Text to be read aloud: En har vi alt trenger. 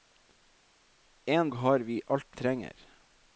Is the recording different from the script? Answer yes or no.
no